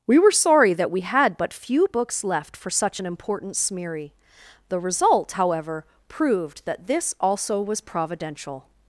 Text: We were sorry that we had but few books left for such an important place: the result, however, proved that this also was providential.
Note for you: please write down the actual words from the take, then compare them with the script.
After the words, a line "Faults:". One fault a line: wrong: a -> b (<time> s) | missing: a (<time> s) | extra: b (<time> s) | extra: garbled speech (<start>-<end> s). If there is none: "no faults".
We were sorry that we had but few books left for such an important smeary: the result, however, proved that this also was providential.
Faults:
wrong: place -> smeary (3.6 s)